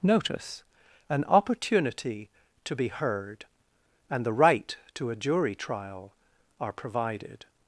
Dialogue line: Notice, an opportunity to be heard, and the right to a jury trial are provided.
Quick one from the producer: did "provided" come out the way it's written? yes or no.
yes